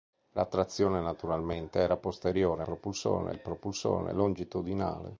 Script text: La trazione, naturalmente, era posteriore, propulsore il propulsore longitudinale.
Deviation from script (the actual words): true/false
false